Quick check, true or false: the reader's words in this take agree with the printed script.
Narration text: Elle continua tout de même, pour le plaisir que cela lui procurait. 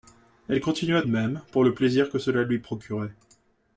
false